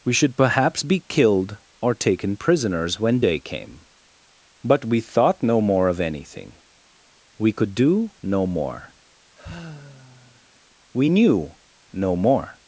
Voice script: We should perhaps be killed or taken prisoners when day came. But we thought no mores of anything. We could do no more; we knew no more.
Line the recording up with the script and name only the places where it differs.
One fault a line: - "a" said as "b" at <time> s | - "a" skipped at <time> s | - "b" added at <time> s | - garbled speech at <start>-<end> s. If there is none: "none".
- "mores" said as "more" at 5.6 s